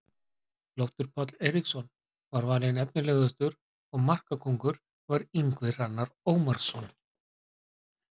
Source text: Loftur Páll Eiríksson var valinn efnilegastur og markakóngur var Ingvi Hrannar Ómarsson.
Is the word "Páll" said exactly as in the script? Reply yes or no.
yes